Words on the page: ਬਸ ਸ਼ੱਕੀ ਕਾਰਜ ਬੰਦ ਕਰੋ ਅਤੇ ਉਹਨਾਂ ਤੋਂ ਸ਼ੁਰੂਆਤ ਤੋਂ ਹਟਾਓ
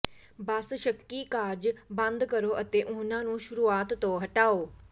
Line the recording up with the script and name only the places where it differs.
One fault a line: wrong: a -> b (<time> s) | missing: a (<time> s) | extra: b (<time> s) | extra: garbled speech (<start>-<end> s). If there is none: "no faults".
wrong: ਤੋਂ -> ਨੂੰ (3.2 s)